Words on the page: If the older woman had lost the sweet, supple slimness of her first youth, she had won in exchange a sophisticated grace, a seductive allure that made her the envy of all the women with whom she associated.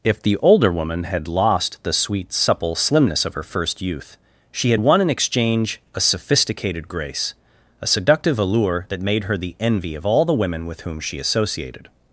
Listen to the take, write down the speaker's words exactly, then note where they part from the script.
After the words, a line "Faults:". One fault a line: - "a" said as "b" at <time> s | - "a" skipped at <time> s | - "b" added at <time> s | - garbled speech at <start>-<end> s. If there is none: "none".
If the older woman had lost the sweet, supple slimness of her first youth, she had won in exchange a sophisticated grace, a seductive allure that made her the envy of all the women with whom she associated.
Faults:
none